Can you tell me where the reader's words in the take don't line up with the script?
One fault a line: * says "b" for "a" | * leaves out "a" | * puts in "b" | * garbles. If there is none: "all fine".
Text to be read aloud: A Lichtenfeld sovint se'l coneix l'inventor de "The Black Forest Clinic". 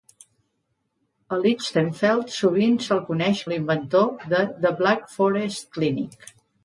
all fine